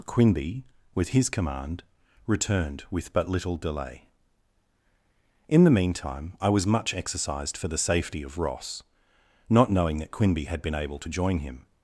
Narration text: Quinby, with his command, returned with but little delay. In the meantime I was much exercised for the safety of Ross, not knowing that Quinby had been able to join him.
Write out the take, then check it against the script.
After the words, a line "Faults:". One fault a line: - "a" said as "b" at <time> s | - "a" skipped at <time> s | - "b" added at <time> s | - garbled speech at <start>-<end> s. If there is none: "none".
Quinby, with his command, returned with but little delay. In the meantime I was much exercised for the safety of Ross, not knowing that Quinby had been able to join him.
Faults:
none